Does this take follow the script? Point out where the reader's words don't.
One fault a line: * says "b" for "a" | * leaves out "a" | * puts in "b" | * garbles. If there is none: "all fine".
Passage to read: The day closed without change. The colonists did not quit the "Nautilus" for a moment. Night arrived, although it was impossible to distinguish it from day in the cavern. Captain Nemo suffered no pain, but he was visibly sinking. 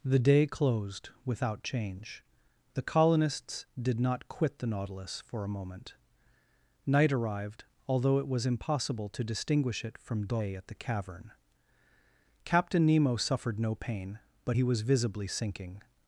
* says "at" for "in"